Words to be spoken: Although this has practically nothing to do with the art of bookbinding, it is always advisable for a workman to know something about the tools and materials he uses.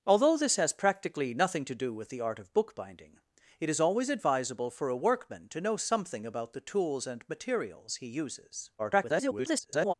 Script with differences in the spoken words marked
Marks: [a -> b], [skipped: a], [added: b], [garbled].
Although this has practically nothing to do with the art of bookbinding, it is always advisable for a workman to know something about the tools and materials he uses. [garbled]